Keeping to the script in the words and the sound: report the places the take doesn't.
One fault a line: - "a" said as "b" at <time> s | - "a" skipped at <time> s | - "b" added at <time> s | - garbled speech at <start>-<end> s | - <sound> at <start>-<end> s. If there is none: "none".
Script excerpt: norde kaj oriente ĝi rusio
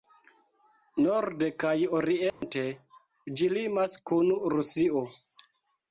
- dropout at 2.3-2.4 s
- "limas kun" added at 3.6 s